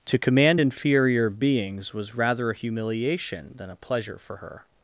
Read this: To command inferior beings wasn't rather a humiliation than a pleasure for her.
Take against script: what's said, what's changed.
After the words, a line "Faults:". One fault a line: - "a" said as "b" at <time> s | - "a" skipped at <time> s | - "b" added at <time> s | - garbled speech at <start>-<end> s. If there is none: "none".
To command inferior beings was rather a humiliation than a pleasure for her.
Faults:
- "wasn't" said as "was" at 1.9 s